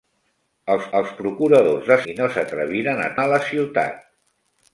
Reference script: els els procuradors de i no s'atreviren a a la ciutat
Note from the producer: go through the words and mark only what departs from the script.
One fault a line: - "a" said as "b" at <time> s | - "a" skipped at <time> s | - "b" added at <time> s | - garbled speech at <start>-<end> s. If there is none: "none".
none